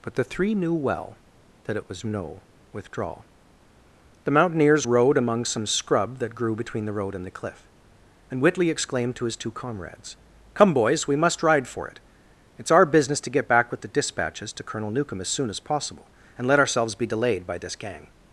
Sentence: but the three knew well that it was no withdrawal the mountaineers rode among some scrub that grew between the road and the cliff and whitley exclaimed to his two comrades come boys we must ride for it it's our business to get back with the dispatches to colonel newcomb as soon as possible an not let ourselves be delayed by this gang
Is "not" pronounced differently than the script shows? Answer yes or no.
yes